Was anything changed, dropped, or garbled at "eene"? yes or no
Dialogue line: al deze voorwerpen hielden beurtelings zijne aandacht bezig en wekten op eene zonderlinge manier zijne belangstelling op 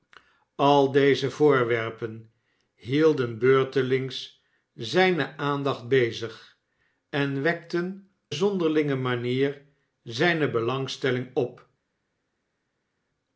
yes